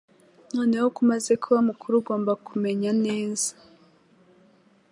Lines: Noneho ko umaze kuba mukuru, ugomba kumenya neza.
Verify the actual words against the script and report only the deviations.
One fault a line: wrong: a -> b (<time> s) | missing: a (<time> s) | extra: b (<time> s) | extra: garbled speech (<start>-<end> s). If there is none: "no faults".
no faults